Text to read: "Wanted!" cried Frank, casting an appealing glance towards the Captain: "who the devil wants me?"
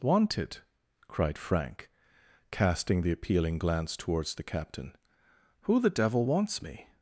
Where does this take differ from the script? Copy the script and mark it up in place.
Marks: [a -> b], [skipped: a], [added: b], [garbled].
"Wanted!" cried Frank, casting [an -> the] appealing glance towards the Captain: "who the devil wants me?"